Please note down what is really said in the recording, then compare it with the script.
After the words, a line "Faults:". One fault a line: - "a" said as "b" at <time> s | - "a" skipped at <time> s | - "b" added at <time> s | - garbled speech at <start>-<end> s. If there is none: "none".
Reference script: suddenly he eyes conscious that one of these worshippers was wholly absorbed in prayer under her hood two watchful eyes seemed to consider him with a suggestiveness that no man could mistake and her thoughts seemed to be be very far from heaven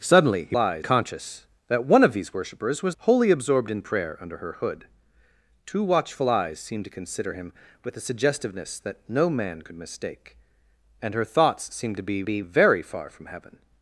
suddenly he eyes conscious that one of these worshippers was wholly absorbed in prayer under her hood two watchful eyes seemed to consider him with a suggestiveness that no man could mistake and her thoughts seemed to be be very far from heaven
Faults:
none